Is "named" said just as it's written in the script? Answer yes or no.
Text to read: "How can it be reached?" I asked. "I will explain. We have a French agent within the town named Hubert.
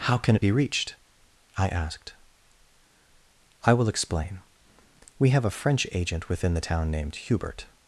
yes